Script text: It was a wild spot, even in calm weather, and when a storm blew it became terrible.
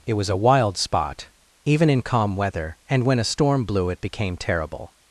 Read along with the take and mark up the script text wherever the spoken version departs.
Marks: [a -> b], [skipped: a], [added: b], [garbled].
It was a wild spot, even in calm weather, and when a storm blew it became terrible.